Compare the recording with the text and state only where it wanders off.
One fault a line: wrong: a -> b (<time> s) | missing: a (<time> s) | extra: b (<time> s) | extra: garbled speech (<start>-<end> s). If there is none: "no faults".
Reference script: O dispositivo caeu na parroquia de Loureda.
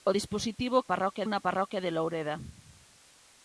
wrong: caeu -> parroquia (0.9 s)